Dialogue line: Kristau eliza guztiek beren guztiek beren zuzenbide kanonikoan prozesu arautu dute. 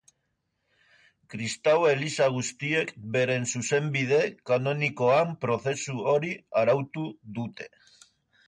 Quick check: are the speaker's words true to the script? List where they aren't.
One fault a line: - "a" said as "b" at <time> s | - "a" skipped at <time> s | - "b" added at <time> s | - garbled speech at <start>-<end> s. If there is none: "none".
- "guztiek beren" skipped at 3.5 s
- "hori" added at 6.2 s